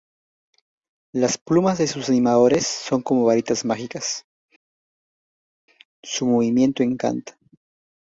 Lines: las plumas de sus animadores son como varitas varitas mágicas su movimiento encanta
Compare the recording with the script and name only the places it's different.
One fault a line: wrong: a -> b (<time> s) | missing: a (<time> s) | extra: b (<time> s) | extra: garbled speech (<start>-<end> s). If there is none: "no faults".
missing: varitas (3.7 s)